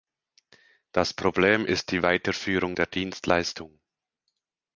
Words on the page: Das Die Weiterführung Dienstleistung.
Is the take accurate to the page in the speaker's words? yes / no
no